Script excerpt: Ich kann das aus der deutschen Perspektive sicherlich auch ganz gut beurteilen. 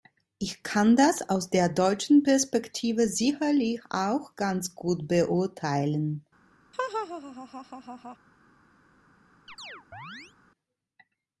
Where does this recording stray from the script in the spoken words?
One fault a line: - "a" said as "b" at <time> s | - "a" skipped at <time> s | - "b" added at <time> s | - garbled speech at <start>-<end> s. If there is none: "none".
none